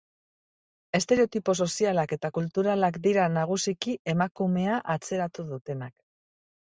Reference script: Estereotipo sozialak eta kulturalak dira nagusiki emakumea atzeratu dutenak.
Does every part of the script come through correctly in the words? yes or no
yes